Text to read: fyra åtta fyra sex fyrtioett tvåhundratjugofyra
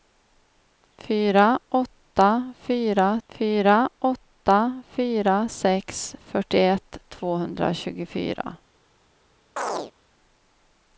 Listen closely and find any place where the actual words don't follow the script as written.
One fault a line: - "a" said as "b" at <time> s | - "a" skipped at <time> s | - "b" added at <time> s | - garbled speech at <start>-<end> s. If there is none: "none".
- "fyra åtta fyra" added at 3.3 s